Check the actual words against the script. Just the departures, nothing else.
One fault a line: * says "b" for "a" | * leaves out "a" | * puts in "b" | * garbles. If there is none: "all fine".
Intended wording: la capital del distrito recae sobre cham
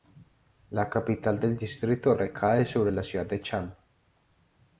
* puts in "la ciudad de"